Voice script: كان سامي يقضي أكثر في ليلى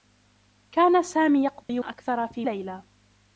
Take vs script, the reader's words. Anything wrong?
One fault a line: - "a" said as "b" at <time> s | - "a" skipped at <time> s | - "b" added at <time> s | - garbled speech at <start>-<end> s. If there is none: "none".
none